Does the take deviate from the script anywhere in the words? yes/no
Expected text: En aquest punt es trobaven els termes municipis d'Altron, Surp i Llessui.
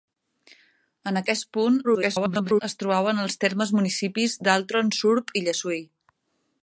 yes